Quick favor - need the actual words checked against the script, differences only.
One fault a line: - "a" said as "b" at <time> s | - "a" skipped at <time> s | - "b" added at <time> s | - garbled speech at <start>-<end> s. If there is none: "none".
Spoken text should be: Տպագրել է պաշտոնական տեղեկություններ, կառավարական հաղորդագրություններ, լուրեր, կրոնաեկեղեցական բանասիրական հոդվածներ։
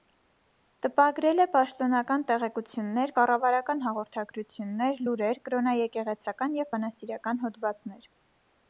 - "և" added at 6.6 s